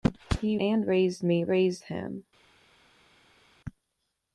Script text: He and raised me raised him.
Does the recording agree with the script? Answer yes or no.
yes